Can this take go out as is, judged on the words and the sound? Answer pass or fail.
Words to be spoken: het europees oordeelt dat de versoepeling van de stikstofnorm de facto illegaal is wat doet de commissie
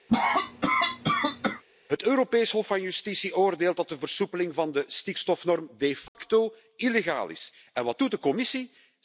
fail